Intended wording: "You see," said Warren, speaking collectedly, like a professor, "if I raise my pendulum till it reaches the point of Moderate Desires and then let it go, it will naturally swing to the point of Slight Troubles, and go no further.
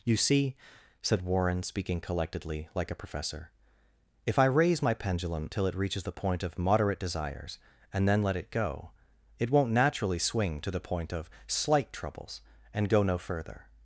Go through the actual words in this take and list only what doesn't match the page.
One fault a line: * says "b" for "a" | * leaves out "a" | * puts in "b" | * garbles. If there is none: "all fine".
* says "won't" for "will"